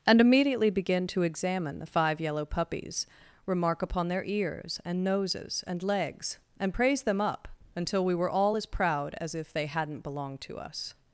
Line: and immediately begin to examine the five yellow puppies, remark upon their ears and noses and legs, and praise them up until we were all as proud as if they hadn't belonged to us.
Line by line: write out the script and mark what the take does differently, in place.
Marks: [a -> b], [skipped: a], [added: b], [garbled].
and immediately begin to examine the five yellow puppies, remark upon their ears and noses and legs, and praise them up until we were all as proud as if they hadn't belonged to us.